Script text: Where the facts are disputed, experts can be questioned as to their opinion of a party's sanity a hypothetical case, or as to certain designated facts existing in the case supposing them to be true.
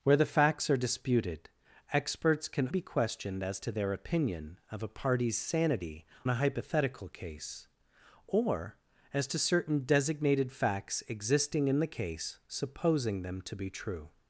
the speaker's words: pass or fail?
pass